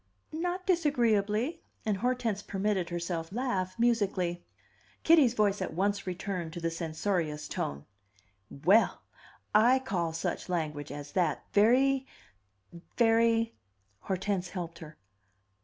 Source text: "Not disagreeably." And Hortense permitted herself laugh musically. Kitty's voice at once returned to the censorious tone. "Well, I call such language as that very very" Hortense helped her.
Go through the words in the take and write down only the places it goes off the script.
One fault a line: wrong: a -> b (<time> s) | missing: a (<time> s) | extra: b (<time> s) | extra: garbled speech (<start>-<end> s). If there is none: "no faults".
no faults